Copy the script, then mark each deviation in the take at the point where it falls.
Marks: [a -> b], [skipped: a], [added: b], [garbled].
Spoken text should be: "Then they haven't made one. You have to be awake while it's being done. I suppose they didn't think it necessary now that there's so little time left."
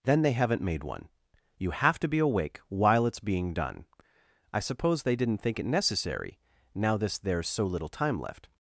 "Then they haven't made one. You have to be awake while it's being done. I suppose they didn't think it necessary now [that -> this] there's so little time left."